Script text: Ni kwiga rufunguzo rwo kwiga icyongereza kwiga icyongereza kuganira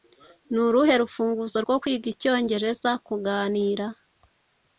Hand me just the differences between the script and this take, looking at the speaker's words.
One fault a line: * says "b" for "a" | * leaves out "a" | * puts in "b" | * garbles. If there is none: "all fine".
* says "uruhe" for "kwiga"
* leaves out "kwiga icyongereza"